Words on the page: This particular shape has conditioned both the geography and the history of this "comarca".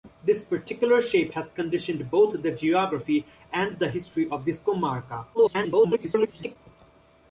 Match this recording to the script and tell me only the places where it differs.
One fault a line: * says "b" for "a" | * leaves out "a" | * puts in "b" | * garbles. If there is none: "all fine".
* garbles